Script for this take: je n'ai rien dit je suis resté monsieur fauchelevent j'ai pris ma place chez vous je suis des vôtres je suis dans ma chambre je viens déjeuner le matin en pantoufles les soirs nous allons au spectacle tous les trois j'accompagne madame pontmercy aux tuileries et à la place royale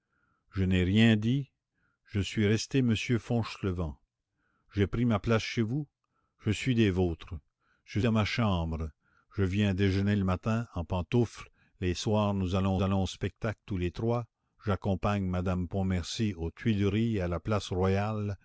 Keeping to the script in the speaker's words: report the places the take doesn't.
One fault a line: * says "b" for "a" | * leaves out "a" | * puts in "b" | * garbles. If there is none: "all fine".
* leaves out "suis"
* puts in "allons"